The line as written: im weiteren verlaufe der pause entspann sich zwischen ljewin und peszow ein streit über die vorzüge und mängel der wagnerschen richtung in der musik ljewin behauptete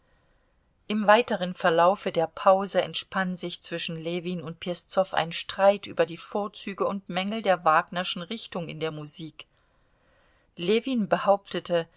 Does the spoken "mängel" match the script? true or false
true